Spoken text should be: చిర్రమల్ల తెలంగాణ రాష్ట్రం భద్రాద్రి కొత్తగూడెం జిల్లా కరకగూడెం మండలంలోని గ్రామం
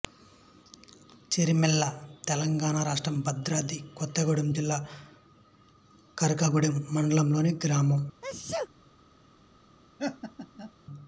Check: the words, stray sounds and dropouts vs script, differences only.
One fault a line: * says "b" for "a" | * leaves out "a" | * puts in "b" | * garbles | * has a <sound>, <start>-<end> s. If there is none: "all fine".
* has a sneeze, 8.2-8.7 s
* has a laugh, 10.0-10.7 s